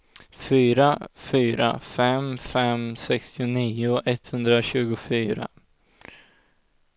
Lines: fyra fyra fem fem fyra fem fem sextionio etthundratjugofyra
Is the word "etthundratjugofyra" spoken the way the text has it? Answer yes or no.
yes